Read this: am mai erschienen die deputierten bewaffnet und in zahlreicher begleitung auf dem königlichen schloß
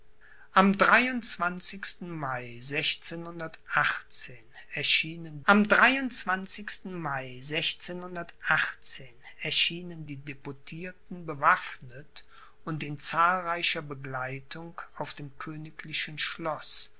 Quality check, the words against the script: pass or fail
fail